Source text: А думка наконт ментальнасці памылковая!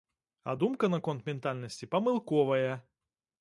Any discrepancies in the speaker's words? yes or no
no